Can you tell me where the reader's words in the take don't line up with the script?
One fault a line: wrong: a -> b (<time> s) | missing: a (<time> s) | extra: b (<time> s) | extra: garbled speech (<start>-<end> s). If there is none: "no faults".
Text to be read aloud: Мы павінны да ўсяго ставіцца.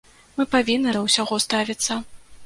no faults